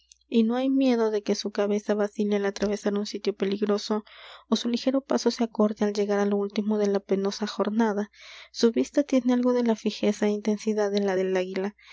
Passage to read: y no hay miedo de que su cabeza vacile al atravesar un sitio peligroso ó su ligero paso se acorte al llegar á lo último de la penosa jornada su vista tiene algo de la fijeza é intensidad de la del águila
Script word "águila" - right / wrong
right